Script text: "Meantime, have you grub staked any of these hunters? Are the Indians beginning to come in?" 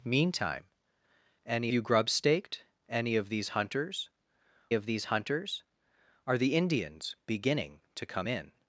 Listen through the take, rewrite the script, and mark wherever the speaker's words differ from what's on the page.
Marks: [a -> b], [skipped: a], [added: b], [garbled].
"Meantime, [have -> any] you grub staked any of these hunters? [added: of these hunters] Are the Indians beginning to come in?"